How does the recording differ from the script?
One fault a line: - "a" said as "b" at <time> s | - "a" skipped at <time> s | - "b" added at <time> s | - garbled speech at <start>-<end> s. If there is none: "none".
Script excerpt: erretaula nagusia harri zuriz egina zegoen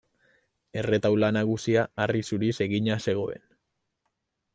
none